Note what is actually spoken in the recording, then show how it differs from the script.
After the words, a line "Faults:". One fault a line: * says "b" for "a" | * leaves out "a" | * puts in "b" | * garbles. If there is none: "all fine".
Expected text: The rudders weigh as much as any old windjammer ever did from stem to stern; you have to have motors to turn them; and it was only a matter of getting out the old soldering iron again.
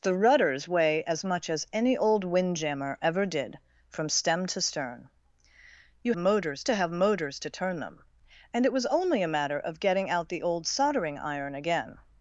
The rudders weigh as much as any old windjammer ever did from stem to stern; you motors to have motors to turn them; and it was only a matter of getting out the old soldering iron again.
Faults:
* says "motors" for "have"